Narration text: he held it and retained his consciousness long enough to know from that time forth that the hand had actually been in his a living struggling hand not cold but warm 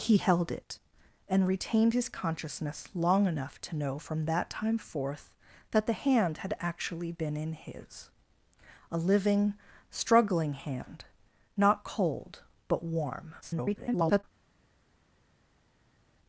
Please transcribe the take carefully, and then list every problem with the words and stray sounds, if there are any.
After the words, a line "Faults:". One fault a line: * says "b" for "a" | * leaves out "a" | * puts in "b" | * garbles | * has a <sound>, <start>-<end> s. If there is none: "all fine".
he held it and retained his consciousness long enough to know from that time forth that the hand had actually been in his a living struggling hand not cold but warm [garbled]
Faults:
* garbles